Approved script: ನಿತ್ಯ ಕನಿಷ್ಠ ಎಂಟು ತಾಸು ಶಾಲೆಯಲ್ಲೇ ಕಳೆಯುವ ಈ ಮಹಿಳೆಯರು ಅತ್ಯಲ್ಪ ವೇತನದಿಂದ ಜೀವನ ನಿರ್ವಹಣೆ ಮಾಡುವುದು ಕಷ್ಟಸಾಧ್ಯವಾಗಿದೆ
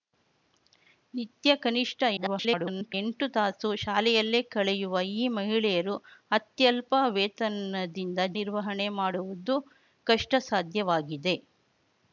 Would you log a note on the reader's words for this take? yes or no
yes